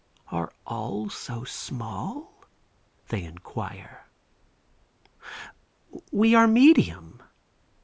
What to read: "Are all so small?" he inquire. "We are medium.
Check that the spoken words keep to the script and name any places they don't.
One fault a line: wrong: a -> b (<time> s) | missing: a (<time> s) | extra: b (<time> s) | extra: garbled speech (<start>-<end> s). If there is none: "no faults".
wrong: he -> they (3.1 s)